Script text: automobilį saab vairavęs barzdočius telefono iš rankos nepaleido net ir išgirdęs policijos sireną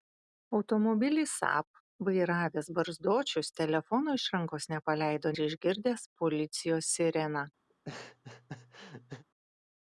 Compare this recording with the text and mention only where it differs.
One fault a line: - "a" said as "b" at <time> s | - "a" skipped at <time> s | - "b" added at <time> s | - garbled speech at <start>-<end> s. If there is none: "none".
- "net" skipped at 5.3 s